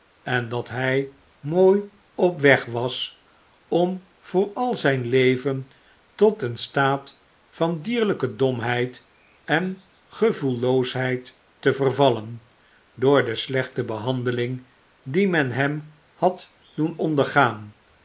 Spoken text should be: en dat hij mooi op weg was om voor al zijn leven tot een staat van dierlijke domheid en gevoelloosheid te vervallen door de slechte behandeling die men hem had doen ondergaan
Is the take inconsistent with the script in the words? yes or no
no